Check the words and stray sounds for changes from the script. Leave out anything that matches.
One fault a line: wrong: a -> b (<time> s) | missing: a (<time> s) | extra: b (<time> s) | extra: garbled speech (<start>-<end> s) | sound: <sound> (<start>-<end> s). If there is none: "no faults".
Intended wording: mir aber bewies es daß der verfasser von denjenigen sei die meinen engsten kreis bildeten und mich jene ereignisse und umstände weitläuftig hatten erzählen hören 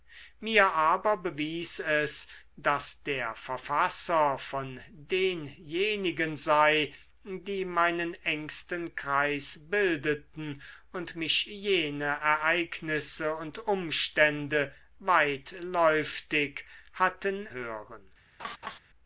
missing: erzählen (17.5 s)
sound: laugh (18.4-18.8 s)